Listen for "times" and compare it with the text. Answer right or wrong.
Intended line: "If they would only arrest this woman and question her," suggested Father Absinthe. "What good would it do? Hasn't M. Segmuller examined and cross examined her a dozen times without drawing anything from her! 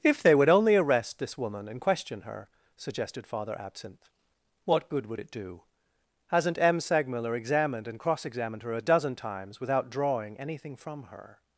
right